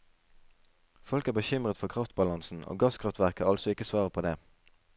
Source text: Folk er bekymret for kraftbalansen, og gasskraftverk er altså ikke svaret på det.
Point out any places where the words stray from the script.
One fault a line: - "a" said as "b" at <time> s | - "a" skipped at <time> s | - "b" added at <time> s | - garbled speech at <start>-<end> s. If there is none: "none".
none